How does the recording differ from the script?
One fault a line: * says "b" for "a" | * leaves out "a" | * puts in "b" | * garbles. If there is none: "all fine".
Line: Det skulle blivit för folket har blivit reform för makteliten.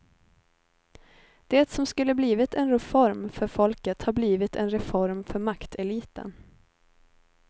* puts in "som"
* puts in "en reform"
* puts in "en"